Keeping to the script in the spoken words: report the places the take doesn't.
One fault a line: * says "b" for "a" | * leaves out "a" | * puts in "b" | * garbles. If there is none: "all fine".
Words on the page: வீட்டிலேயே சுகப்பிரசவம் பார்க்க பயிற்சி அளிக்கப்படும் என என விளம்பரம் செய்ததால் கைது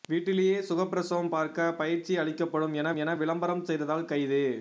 all fine